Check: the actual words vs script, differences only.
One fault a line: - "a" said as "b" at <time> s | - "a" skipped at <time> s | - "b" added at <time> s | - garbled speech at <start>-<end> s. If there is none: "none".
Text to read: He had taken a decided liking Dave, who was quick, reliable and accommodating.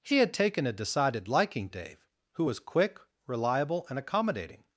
none